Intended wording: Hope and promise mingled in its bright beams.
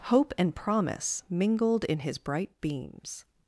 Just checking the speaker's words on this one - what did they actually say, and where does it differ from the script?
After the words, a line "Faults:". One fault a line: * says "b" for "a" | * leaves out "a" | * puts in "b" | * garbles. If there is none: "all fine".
Hope and promise mingled in his bright beams.
Faults:
* says "his" for "its"